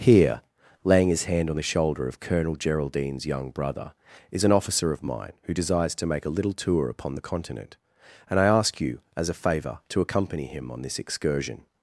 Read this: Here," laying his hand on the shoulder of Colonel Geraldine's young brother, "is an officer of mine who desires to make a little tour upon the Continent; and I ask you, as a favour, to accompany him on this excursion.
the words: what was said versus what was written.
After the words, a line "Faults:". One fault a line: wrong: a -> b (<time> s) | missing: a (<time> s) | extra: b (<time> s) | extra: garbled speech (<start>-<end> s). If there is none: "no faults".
Here," laying his hand on the shoulder of Colonel Geraldine's young brother, "is an officer of mine who desires to make a little tour upon the Continent; and I ask you, as a favour, to accompany him on this excursion.
Faults:
no faults